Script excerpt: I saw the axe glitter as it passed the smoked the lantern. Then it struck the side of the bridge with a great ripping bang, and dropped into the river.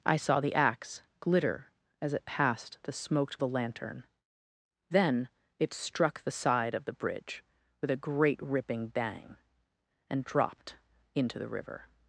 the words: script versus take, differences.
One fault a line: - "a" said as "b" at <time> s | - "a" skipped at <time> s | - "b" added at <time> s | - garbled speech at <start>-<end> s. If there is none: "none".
none